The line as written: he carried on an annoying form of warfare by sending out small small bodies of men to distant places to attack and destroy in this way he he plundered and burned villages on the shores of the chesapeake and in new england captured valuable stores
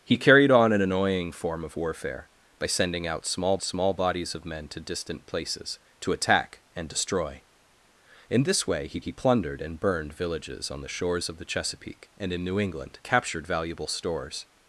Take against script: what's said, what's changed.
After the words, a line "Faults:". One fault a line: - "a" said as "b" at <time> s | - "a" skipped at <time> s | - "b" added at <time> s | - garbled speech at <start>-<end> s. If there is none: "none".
he carried on an annoying form of warfare by sending out small small bodies of men to distant places to attack and destroy in this way he he plundered and burned villages on the shores of the chesapeake and in new england captured valuable stores
Faults:
none